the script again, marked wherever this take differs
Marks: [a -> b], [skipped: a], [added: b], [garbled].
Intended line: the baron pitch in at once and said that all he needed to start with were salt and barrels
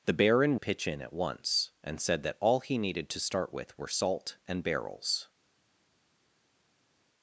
the baron pitch in at once and said that all he needed to start with were salt and barrels